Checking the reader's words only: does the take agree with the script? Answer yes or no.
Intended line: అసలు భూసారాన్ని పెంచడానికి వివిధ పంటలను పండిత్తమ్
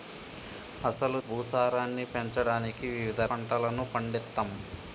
yes